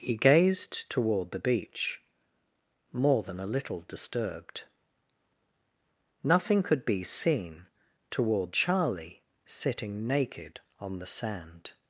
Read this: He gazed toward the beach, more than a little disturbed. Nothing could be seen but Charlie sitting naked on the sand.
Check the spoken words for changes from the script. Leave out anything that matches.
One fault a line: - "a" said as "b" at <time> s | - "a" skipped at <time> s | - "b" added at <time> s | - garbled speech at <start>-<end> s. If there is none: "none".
- "but" said as "toward" at 8.1 s